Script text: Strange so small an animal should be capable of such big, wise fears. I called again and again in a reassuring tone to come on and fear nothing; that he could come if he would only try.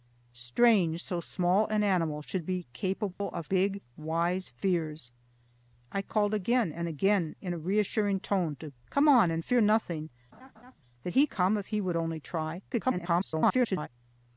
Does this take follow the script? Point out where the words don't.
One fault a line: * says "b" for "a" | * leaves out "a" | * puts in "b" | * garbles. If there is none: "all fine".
* leaves out "such"
* leaves out "could"
* garbles